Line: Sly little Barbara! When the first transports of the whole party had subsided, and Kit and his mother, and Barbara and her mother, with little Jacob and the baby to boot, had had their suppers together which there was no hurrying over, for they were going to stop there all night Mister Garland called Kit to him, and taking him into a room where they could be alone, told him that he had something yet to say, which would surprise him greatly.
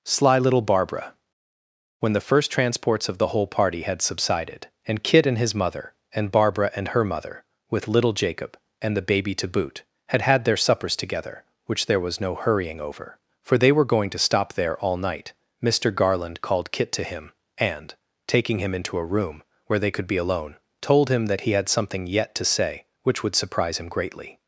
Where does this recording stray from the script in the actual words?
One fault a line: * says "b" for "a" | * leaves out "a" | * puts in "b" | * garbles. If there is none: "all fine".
all fine